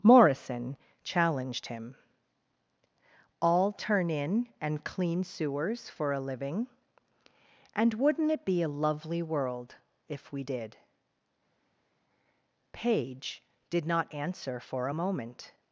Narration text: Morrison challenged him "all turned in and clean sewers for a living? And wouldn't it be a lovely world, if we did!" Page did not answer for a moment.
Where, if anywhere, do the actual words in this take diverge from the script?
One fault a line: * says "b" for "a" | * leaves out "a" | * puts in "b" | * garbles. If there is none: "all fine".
* says "turn" for "turned"